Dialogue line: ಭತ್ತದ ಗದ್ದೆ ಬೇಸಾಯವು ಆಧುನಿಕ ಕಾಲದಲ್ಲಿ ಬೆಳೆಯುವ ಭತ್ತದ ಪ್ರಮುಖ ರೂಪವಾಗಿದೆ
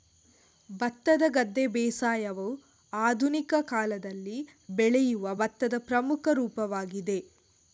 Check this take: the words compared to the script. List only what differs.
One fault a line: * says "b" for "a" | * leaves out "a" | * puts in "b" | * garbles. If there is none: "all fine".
all fine